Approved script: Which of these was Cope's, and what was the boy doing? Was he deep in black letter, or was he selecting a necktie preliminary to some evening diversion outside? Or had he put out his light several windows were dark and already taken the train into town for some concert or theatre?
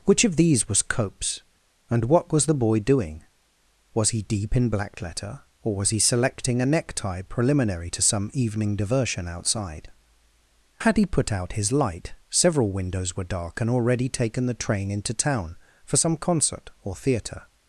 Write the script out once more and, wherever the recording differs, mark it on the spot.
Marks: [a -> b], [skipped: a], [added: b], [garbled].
Which of these was Cope's, and what was the boy doing? Was he deep in black letter, or was he selecting a necktie preliminary to some evening diversion outside? [skipped: Or] had he put out his light several windows were dark and already taken the train into town for some concert or theatre?